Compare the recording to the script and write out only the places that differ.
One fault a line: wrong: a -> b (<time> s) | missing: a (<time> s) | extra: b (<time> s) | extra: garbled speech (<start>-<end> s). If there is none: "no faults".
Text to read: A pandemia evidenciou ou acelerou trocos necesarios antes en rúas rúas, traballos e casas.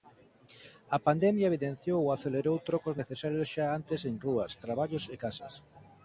extra: xa (3.5 s)
missing: rúas (4.5 s)